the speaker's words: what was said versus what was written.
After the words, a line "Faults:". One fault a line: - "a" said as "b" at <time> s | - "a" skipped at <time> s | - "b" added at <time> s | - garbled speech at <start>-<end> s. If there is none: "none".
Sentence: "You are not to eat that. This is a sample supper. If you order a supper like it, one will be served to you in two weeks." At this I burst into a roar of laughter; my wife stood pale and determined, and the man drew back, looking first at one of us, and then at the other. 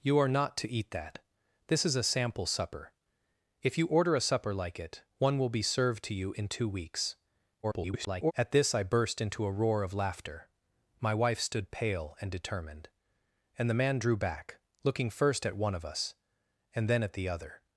"You are not to eat that. This is a sample supper. If you order a supper like it, one will be served to you in two weeks." [garbled] At this I burst into a roar of laughter; my wife stood pale and determined, and the man drew back, looking first at one of us, and then at the other.
Faults:
- garbled speech at 7.6-8.3 s